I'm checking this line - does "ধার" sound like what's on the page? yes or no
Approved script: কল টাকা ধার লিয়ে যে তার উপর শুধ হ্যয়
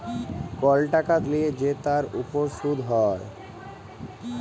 no